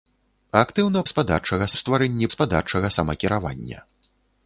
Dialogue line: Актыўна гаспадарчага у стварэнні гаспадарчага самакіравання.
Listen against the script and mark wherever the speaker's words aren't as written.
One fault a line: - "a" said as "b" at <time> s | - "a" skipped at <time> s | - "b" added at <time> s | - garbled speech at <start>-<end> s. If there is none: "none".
none